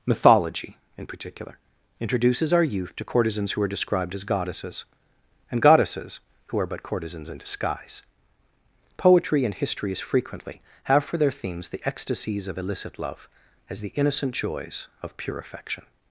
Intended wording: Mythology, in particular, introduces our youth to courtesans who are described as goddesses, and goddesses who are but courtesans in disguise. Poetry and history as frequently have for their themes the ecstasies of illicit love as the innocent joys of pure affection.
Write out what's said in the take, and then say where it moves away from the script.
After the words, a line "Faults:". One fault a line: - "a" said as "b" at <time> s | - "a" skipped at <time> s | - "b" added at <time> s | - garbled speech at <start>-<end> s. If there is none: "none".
Mythology, in particular, introduces our youth to courtesans who are described as goddesses, and goddesses who are but courtesans in disguise. Poetry and history as frequently have for their themes the ecstasies of illicit love as the innocent joys of pure affection.
Faults:
none